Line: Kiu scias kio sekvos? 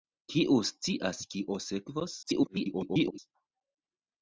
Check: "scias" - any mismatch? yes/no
no